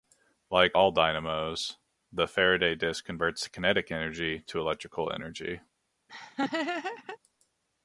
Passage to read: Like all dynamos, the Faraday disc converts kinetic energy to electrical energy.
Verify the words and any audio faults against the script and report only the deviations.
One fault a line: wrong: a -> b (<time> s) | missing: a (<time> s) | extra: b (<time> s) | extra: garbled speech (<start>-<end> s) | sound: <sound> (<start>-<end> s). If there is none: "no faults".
sound: laugh (6.1-7.2 s)